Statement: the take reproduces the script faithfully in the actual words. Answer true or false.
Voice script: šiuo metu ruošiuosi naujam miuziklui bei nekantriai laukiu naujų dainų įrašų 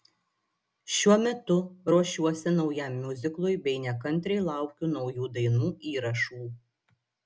true